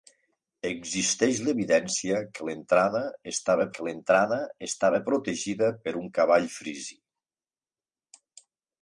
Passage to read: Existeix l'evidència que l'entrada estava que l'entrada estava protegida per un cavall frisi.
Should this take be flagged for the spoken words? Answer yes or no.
no